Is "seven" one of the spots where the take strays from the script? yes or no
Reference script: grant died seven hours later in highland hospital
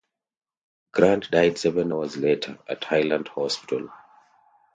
no